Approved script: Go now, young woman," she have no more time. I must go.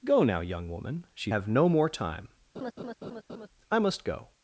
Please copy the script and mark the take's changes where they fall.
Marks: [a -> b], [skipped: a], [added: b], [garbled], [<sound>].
Go now, young woman," she have no more time. [laugh] I must go.